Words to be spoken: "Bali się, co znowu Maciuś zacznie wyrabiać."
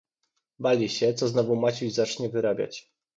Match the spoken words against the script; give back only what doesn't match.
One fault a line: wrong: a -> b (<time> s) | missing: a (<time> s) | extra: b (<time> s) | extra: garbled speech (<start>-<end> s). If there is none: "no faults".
no faults